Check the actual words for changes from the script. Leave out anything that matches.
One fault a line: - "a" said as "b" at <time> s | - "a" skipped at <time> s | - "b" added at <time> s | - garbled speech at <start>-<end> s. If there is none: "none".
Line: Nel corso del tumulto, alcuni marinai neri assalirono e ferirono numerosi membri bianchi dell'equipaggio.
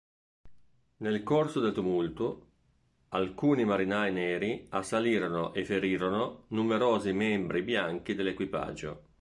none